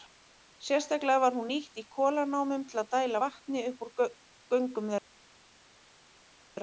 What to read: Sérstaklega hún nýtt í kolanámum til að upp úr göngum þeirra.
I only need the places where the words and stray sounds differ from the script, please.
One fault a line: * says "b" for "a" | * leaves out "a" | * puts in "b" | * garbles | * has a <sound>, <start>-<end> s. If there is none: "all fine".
* puts in "var"
* puts in "dæla vatni"